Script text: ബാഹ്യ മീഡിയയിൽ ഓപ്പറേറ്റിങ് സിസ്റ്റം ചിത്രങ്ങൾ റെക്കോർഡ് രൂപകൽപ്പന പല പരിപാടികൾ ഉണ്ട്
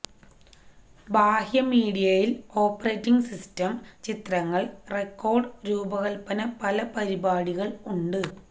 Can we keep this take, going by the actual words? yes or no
yes